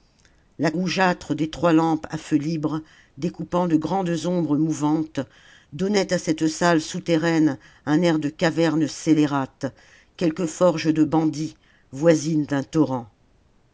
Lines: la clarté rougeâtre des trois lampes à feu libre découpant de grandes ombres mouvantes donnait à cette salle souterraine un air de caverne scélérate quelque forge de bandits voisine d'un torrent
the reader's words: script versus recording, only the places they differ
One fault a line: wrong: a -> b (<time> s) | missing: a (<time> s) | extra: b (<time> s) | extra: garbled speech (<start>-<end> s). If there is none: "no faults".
missing: clarté (0.7 s)